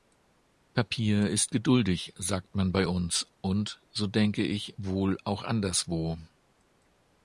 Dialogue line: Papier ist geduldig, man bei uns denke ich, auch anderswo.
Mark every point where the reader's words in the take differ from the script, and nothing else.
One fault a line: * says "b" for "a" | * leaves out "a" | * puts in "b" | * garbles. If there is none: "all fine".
* puts in "sagt"
* puts in "und so"
* puts in "wohl"